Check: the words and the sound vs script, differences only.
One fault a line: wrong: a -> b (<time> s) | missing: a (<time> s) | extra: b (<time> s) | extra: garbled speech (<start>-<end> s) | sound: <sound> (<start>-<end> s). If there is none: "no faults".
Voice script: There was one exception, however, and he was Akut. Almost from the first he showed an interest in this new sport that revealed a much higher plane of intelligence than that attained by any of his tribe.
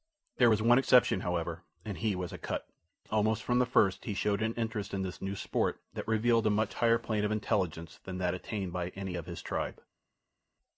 no faults